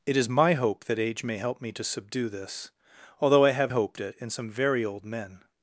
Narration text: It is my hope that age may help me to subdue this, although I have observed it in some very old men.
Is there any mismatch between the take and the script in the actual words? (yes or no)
yes